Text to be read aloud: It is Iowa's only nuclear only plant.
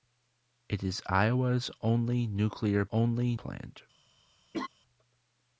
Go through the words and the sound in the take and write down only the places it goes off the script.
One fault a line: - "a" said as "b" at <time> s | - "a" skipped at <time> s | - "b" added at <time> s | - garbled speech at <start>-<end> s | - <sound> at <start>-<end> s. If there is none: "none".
- laugh at 4.5-4.7 s